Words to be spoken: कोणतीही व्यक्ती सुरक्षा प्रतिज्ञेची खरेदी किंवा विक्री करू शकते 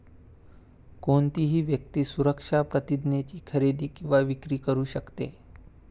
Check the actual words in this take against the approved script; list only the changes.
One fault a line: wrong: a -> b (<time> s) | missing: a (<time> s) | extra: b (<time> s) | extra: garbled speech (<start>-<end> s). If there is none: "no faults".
no faults